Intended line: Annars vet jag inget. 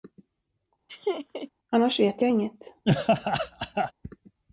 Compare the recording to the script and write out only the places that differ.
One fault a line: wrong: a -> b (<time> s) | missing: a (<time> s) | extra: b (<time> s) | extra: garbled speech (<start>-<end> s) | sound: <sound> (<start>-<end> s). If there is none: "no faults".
sound: laugh (0.9-1.5 s)
sound: laugh (2.8-3.9 s)